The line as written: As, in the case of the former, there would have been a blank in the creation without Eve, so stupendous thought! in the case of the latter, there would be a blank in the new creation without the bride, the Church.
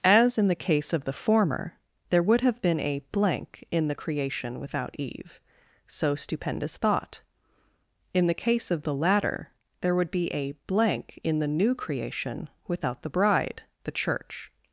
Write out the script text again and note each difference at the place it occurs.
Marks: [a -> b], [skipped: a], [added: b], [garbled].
As, in the case of the former, there would have been a blank in the creation without Eve, so stupendous thought! in the case of the latter, there would be a blank in the new creation without the bride, the Church.